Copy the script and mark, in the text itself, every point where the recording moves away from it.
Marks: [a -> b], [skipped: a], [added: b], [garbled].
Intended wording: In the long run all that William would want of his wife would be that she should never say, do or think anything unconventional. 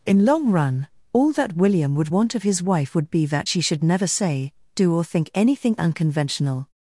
In [skipped: the] long run all that William would want of his wife would be that she should never say, do or think anything unconventional.